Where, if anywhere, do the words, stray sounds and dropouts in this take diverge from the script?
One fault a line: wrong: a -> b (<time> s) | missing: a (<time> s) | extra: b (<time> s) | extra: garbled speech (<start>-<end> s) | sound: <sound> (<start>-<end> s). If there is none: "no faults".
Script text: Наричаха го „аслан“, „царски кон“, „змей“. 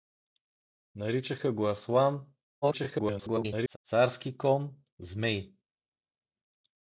extra: garbled speech (2.6-3.8 s)